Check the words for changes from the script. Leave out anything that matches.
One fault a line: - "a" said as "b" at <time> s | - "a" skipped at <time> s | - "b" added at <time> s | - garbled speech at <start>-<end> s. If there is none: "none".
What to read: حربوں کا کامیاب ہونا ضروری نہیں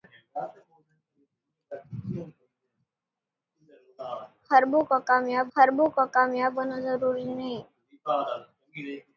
- "حربوں کا کامیاب" added at 5.6 s